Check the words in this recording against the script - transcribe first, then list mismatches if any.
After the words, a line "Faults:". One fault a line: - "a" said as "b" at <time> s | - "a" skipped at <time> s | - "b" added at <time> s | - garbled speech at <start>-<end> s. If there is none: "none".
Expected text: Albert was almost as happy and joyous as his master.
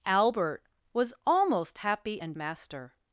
Albert was almost happy and master.
Faults:
- "as" skipped at 1.8 s
- "joyous as his" skipped at 2.3 s